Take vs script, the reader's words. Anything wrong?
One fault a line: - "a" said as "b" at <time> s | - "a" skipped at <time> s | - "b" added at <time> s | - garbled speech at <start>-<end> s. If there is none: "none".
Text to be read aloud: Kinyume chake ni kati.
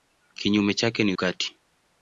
none